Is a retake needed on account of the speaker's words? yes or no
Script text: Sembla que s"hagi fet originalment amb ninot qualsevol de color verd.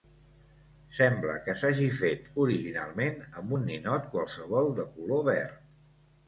yes